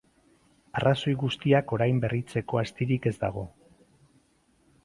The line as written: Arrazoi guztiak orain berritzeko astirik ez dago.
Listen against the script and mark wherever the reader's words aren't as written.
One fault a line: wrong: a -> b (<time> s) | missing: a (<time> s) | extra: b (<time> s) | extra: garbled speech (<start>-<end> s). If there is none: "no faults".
no faults